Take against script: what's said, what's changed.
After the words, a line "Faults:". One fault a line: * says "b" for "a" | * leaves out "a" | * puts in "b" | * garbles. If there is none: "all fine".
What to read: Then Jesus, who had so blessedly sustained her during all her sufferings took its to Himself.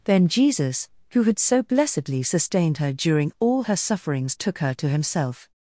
Then Jesus, who had so blessedly sustained her during all her sufferings took her to Himself.
Faults:
* says "her" for "its"